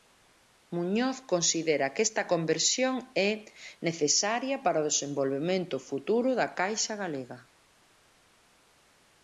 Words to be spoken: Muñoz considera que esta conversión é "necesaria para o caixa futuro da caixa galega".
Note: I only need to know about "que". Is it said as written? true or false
true